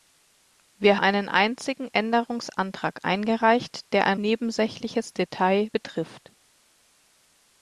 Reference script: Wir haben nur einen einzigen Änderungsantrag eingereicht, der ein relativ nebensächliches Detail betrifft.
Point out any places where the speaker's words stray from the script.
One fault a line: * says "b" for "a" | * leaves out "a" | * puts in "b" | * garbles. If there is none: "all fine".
* leaves out "haben nur"
* leaves out "relativ"